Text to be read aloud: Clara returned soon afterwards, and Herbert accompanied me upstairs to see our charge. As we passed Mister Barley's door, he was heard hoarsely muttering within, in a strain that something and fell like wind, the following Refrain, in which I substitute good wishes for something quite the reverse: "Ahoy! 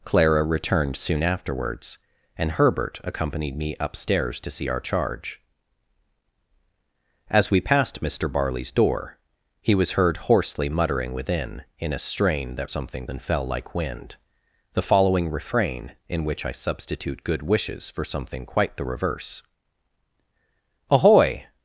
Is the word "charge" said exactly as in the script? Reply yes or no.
yes